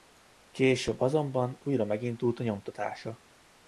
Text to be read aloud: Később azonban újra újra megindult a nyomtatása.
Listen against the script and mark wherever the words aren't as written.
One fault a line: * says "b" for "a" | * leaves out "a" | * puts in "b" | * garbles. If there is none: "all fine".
* leaves out "újra"